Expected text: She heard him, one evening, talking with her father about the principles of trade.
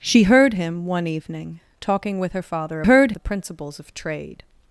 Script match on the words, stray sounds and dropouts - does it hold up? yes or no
no